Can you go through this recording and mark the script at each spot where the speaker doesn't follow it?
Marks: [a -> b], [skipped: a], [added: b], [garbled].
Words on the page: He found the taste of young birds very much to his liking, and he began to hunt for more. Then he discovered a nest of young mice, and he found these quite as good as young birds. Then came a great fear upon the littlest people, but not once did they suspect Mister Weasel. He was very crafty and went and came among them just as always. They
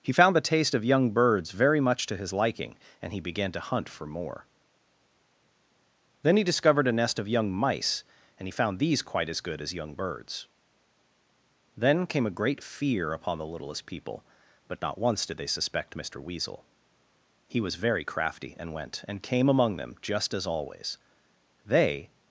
He found the taste of young birds very much to his liking, and he began to hunt for more. Then he discovered a nest of young mice, and he found these quite as good as young birds. Then came a great fear upon the littlest people, but not once did they suspect Mister Weasel. He was very crafty and went and came among them just as always. They